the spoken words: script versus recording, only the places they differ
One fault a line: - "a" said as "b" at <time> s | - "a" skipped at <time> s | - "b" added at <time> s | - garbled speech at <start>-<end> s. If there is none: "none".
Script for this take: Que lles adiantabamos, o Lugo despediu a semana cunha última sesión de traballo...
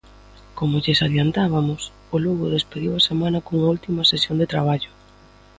- "Que" said as "Como" at 0.6 s